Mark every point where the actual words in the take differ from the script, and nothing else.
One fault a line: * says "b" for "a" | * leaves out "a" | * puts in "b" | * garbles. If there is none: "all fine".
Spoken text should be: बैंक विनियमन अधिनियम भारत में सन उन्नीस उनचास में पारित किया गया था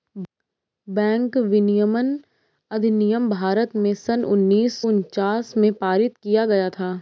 all fine